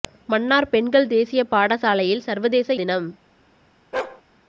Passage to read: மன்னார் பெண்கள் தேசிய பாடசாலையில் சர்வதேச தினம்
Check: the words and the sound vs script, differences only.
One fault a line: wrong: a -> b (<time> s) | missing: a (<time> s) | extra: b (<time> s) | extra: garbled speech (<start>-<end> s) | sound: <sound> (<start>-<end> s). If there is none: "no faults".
sound: bark (3.9-4.2 s)